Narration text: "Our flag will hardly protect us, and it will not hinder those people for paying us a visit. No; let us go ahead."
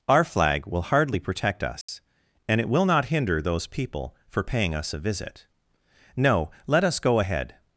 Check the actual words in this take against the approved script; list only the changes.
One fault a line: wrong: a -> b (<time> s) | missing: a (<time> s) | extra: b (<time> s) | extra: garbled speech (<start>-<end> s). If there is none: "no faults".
no faults